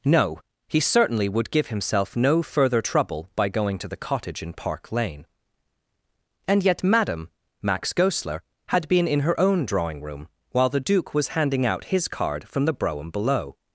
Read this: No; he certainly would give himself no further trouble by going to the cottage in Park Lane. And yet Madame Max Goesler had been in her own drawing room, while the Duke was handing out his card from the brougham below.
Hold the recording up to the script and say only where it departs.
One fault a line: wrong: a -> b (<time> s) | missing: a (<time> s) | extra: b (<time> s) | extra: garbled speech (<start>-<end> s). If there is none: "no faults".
no faults